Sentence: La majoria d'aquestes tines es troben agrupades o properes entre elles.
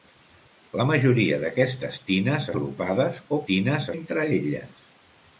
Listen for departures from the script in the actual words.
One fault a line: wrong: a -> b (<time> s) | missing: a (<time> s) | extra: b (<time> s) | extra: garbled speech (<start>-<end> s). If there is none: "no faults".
missing: es troben (2.5 s)
wrong: properes -> tines (3.5 s)